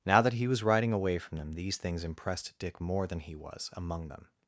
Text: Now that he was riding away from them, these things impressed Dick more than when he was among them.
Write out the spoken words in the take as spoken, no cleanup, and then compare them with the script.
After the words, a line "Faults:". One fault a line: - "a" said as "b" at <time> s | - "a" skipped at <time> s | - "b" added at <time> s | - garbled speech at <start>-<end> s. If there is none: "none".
Now that he was riding away from them, these things impressed Dick more than he was among them.
Faults:
- "when" skipped at 3.2 s